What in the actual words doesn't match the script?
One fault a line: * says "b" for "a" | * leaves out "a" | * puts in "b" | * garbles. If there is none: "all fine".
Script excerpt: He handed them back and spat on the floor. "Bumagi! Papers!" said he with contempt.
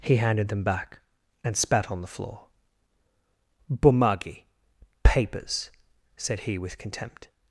all fine